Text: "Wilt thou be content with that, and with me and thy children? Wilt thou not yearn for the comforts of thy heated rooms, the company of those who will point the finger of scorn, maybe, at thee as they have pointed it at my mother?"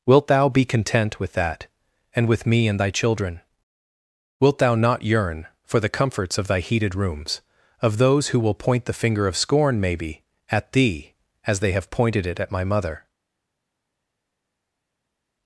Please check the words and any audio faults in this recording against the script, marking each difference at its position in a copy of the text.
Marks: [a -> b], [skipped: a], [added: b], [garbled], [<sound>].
"Wilt thou be content with that, and with me and thy children? Wilt thou not yearn for the comforts of thy heated rooms, [skipped: the company] of those who will point the finger of scorn, maybe, at thee as they have pointed it at my mother?"